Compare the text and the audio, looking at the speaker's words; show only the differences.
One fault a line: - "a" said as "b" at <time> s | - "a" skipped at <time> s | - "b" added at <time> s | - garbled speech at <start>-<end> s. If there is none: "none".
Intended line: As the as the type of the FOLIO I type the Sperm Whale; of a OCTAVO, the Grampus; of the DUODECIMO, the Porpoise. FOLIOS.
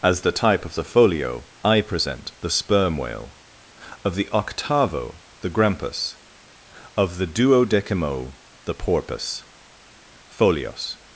- "as the" skipped at 0.3 s
- "type" said as "present" at 1.8 s
- "a" said as "the" at 4.2 s